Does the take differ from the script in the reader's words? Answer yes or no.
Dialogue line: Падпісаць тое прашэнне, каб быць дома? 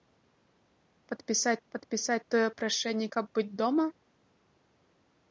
yes